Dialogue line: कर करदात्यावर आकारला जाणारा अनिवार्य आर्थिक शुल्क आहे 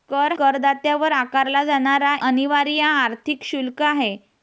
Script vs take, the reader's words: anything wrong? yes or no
no